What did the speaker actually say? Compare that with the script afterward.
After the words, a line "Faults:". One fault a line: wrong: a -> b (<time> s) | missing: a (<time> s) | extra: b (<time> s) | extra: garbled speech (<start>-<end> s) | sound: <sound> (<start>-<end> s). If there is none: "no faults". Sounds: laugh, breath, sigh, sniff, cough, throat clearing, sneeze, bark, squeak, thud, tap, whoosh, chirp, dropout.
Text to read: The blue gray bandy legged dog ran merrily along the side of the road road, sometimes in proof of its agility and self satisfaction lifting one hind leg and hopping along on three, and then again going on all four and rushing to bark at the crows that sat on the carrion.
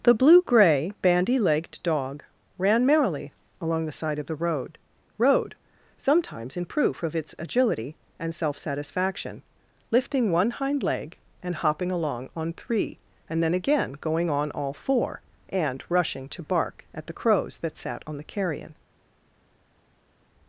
The blue gray bandy legged dog ran merrily along the side of the road road, sometimes in proof of its agility and self satisfaction lifting one hind leg and hopping along on three, and then again going on all four and rushing to bark at the crows that sat on the carrion.
Faults:
no faults